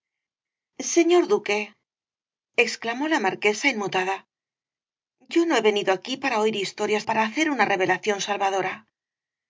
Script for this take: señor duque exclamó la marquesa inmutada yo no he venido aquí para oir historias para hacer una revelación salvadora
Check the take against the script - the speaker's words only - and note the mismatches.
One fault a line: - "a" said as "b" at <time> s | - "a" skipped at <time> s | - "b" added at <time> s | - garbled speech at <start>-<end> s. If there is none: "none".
none